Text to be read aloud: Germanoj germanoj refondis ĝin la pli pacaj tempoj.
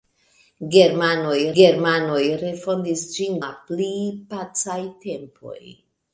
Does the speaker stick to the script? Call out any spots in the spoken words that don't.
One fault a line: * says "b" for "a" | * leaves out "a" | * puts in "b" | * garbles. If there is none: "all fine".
all fine